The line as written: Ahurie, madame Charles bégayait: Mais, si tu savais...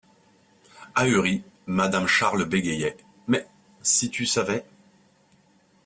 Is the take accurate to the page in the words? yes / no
yes